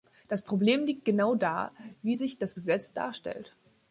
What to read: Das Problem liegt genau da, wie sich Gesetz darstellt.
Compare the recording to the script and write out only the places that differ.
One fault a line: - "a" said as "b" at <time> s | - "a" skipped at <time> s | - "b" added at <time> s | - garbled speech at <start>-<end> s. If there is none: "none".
- "das" added at 2.4 s